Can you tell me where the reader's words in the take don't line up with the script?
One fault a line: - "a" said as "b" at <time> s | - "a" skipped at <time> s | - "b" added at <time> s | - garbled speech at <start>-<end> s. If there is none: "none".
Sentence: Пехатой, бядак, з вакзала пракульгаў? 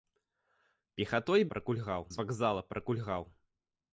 - "бядак" said as "пракульгаў" at 1.5 s